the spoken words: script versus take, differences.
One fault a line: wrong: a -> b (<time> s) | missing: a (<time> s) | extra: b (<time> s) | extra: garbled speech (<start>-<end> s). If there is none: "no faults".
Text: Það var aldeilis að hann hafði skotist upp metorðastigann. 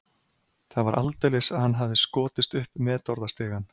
no faults